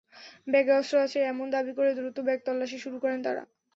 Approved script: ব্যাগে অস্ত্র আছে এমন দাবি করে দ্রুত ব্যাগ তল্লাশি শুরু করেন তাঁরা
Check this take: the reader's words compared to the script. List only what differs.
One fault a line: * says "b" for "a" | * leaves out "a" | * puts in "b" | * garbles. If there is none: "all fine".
all fine